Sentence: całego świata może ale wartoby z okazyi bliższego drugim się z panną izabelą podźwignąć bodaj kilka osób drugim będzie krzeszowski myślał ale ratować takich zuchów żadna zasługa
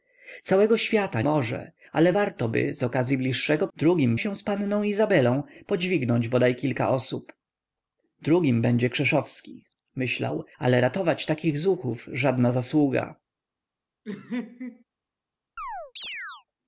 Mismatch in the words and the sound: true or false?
true